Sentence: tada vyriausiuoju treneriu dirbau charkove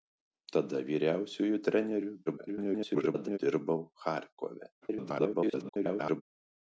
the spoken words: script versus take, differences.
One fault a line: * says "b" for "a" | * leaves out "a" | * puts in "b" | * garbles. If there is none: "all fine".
* garbles
* garbles